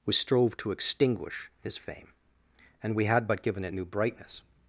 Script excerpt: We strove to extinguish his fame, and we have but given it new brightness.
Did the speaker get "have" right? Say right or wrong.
wrong